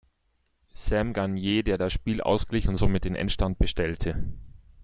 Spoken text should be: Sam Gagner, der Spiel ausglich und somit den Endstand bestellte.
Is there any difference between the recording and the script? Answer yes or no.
yes